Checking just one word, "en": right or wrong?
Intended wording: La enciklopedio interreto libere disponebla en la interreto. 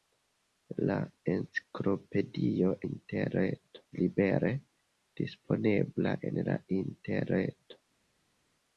right